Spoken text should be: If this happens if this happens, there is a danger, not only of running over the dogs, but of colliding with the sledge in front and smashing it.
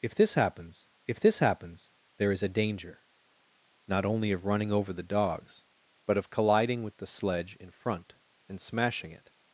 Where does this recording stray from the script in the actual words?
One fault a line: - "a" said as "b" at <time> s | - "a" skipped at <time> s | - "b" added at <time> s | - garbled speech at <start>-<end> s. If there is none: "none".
none